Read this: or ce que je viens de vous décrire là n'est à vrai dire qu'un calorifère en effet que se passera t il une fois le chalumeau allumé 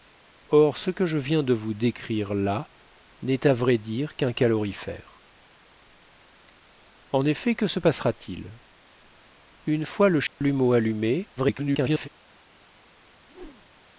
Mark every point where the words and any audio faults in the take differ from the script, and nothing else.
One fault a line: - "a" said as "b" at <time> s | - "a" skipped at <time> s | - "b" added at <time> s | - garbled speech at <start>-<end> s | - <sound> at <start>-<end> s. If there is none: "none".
- dropout at 10.3-10.4 s
- garbled speech at 11.4-12.1 s
- whoosh at 13.3-13.8 s